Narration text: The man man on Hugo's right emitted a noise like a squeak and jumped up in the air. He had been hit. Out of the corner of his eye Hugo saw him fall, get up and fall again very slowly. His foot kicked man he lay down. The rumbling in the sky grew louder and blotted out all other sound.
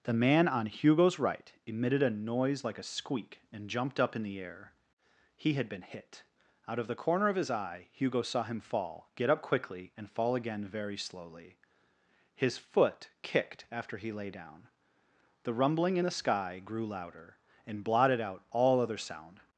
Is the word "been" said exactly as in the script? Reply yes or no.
yes